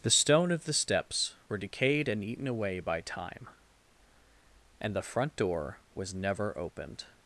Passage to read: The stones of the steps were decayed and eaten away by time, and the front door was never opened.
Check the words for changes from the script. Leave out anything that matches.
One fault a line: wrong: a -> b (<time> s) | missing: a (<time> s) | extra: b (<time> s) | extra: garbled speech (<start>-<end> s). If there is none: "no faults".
wrong: stones -> stone (0.1 s)